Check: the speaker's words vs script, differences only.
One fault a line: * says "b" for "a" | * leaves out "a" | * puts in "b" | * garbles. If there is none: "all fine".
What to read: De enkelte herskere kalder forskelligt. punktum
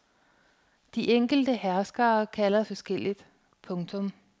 all fine